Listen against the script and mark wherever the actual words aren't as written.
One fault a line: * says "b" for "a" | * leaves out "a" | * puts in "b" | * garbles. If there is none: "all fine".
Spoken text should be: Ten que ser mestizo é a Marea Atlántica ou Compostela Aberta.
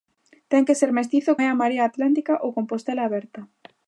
all fine